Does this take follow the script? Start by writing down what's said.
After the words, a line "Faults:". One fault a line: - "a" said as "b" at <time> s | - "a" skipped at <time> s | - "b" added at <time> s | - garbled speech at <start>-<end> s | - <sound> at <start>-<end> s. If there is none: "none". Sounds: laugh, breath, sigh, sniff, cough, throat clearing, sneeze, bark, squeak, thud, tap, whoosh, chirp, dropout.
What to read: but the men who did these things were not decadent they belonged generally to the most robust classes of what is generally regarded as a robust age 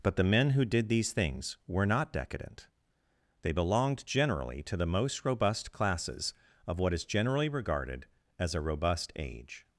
but the men who did these things were not decadent they belonged generally to the most robust classes of what is generally regarded as a robust age
Faults:
none